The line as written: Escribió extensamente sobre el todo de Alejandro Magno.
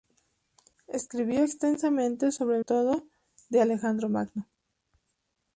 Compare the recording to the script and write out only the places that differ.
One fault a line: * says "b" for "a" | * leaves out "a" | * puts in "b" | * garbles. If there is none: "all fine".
all fine